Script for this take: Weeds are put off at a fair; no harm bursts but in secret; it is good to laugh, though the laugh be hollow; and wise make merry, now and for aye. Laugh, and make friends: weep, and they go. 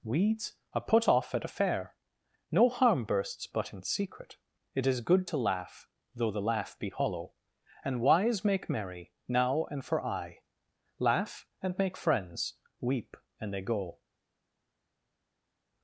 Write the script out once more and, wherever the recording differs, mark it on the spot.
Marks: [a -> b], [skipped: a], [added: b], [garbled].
Weeds are put off at a fair; no harm bursts but in secret; it is good to laugh, though the laugh be hollow; and wise make merry, now and for aye. Laugh, and make friends: weep, and they go.